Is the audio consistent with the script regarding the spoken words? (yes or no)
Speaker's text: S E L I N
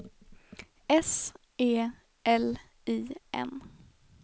yes